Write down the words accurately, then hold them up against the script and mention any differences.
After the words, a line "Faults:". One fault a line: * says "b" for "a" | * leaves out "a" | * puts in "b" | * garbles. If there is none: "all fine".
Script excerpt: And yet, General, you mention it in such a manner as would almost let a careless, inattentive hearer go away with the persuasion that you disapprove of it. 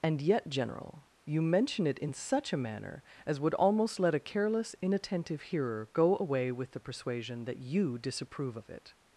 And yet, General, you mention it in such a manner as would almost let a careless, inattentive hearer go away with the persuasion that you disapprove of it.
Faults:
all fine